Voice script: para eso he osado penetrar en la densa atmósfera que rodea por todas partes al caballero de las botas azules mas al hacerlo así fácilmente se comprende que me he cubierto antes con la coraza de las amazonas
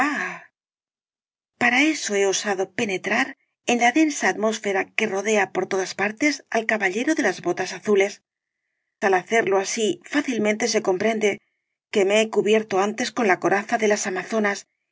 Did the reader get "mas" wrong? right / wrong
wrong